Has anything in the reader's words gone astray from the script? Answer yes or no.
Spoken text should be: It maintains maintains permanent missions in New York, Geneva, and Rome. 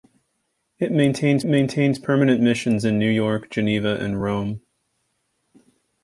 no